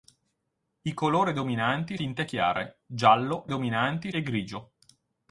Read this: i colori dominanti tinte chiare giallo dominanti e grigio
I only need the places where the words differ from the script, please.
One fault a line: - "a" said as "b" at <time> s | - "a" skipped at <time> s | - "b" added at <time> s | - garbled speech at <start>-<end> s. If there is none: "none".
none